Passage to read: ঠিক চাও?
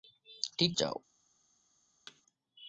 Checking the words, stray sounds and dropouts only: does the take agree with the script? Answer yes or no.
no